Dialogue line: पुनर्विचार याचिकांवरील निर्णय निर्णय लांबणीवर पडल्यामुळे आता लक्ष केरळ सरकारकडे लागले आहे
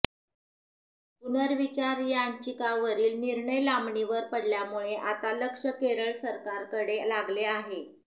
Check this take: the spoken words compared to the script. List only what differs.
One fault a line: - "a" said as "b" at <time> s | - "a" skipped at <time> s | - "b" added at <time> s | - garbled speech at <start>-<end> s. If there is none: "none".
- "निर्णय" skipped at 3.6 s